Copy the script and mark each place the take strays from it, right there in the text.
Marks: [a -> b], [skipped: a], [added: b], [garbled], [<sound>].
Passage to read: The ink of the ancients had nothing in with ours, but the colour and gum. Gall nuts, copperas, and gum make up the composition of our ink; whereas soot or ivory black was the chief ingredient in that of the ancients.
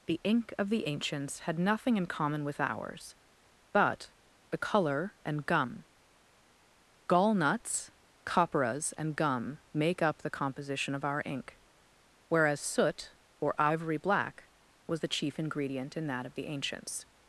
The ink of the ancients had nothing in [added: common] with ours, but the colour and gum. Gall nuts, copperas, and gum make up the composition of our ink; whereas soot or ivory black was the chief ingredient in that of the ancients.